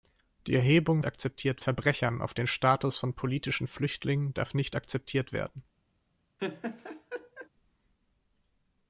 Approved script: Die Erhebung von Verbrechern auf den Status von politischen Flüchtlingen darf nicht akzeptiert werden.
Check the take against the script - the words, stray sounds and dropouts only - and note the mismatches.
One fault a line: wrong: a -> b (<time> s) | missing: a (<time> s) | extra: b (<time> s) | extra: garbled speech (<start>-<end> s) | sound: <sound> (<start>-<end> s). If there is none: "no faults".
wrong: von -> akzeptiert (1.1 s)
sound: laugh (6.4-7.5 s)